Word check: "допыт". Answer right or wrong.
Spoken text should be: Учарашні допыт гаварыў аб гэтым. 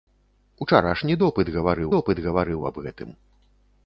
right